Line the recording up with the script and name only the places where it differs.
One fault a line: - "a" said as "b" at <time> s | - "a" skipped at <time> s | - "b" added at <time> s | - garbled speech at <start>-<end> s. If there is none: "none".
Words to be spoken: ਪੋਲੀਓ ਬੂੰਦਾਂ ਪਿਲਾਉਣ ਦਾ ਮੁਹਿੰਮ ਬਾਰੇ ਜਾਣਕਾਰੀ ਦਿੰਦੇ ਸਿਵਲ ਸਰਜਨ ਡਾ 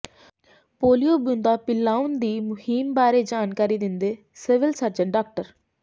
- "ਦਾ" said as "ਦੀ" at 2.2 s